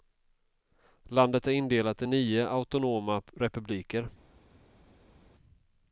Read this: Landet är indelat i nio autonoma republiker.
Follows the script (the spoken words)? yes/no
yes